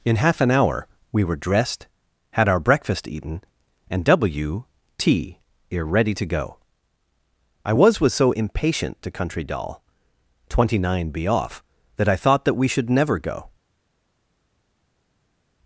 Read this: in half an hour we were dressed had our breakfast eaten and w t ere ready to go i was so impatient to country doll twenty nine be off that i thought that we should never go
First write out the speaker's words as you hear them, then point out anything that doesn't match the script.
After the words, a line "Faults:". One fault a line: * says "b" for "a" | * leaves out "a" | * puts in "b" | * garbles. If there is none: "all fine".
in half an hour we were dressed had our breakfast eaten and w t ere ready to go i was was so impatient to country doll twenty nine be off that i thought that we should never go
Faults:
* puts in "was"